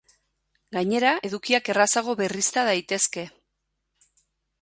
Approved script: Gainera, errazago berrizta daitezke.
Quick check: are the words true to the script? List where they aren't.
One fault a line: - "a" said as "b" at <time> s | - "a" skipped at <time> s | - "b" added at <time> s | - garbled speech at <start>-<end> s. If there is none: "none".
- "edukiak" added at 1.3 s